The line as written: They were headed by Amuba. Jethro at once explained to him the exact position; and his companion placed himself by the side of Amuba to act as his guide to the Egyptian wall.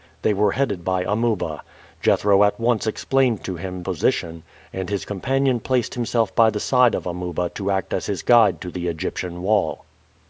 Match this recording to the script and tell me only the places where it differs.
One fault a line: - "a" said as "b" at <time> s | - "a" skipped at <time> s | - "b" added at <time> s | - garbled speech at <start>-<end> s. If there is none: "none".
- "the exact" skipped at 3.8 s